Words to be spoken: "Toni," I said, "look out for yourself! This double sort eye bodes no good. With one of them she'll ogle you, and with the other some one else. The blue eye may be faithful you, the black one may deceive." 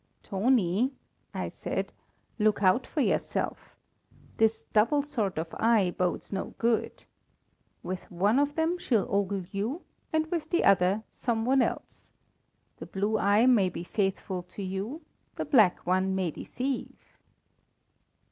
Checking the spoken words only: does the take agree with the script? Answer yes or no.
no